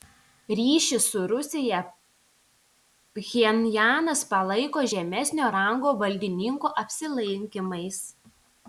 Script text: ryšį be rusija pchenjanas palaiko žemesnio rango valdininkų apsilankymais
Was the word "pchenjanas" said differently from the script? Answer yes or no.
no